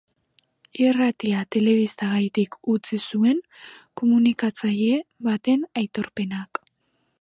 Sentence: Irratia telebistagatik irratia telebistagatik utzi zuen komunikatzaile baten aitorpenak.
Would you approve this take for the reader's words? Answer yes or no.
no